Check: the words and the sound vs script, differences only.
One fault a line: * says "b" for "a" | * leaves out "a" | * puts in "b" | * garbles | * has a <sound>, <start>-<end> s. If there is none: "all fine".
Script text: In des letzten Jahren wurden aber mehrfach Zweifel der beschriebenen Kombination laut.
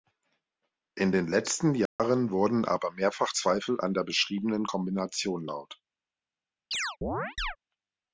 * says "den" for "des"
* has a dropout, 1.9-2.0 s
* puts in "an"
* has a chirp, 6.7-7.6 s